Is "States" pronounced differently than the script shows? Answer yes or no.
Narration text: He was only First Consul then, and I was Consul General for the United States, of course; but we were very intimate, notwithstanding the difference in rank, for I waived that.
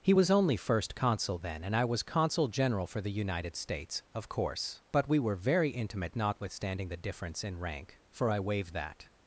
no